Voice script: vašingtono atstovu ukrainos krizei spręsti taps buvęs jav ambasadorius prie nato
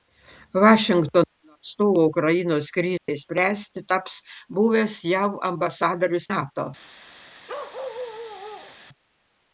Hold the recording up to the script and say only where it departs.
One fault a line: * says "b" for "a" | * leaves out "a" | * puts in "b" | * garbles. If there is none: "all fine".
* leaves out "prie"